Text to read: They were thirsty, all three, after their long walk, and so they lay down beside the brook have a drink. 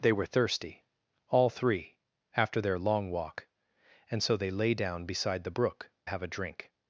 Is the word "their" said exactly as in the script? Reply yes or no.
yes